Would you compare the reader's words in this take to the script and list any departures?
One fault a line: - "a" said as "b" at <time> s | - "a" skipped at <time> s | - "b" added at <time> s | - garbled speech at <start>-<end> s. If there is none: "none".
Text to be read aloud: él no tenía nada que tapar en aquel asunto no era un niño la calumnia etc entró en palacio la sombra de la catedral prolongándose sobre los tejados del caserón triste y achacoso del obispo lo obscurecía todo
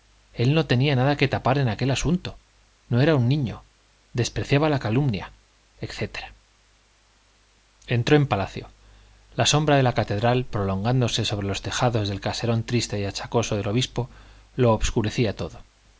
- "despreciaba" added at 4.1 s